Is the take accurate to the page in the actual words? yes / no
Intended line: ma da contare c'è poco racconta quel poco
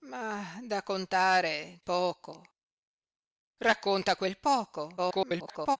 no